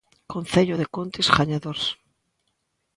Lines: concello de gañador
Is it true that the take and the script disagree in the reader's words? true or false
true